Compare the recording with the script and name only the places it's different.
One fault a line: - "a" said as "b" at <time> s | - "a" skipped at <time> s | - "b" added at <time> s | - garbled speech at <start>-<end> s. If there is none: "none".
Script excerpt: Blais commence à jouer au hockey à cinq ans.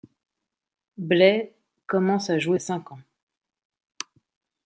- "au hockey" skipped at 2.6 s